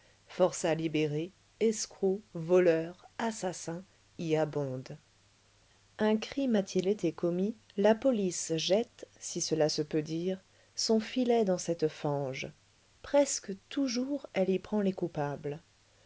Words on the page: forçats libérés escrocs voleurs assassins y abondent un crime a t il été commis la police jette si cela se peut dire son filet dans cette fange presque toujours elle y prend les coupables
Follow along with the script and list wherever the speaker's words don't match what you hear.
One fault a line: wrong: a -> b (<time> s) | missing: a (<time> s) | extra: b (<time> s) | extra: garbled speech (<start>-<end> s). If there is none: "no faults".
no faults